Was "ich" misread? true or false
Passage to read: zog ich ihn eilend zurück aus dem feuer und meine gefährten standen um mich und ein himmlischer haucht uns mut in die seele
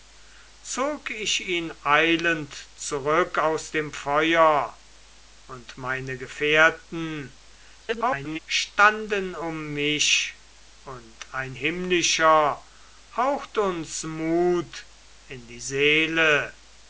false